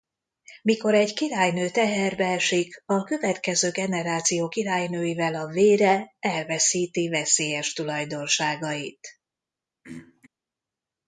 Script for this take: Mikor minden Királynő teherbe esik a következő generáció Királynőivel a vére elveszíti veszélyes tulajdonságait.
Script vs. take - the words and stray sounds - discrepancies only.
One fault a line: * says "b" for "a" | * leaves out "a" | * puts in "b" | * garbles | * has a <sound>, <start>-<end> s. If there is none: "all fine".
* says "egy" for "minden"
* has a throat clearing, 9.8-10.3 s